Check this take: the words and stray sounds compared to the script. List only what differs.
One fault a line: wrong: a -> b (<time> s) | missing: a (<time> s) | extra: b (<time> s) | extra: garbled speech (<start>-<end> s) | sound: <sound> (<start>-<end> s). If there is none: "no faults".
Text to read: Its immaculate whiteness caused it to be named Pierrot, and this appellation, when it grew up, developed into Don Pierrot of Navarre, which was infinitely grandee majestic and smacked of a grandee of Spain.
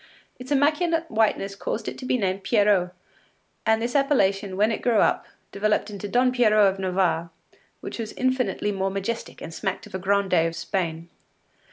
wrong: grandee -> more (8.7 s)